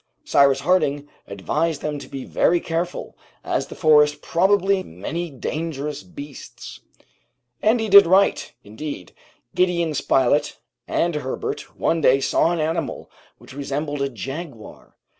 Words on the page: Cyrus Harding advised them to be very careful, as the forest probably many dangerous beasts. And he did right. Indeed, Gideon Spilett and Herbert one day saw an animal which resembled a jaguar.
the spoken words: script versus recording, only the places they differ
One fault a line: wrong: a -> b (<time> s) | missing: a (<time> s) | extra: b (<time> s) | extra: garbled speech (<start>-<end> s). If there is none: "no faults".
no faults